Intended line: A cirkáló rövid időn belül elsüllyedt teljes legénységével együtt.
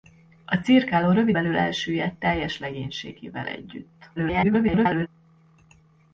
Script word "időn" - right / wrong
wrong